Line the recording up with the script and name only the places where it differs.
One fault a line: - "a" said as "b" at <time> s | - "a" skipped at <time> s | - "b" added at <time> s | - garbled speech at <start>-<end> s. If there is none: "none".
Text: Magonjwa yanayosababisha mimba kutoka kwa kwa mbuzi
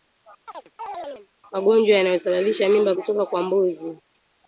- "kwa" skipped at 3.4 s